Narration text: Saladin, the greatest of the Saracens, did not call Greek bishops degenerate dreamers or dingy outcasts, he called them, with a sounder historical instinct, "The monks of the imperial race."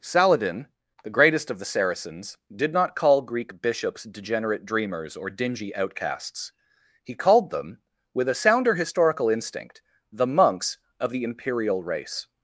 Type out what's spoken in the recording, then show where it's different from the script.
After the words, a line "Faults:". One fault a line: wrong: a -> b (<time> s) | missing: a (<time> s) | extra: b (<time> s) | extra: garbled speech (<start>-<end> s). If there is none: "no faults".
Saladin, the greatest of the Saracens, did not call Greek bishops degenerate dreamers or dingy outcasts, he called them, with a sounder historical instinct, "The monks of the imperial race."
Faults:
no faults